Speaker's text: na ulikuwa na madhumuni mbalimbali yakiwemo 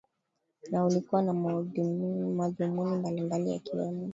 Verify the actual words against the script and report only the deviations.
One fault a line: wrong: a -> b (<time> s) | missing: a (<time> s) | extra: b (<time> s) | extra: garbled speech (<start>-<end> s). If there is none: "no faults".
no faults